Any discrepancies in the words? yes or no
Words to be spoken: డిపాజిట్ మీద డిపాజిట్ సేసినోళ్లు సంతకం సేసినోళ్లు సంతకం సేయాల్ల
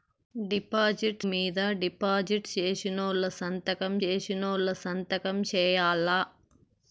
no